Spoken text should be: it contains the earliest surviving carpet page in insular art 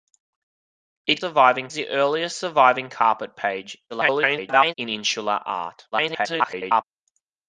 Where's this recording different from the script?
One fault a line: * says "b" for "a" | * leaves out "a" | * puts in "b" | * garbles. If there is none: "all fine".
* says "surviving" for "contains"
* garbles
* garbles